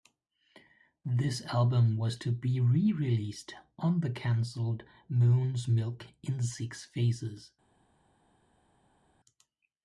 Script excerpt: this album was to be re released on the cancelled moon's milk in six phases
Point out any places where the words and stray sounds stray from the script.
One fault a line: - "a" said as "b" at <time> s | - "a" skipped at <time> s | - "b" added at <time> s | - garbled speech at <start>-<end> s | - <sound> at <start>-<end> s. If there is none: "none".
none